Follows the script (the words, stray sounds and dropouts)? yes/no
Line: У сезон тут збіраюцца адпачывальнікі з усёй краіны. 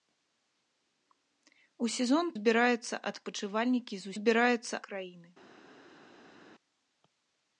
no